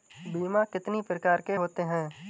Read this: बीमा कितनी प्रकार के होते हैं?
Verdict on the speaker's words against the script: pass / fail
pass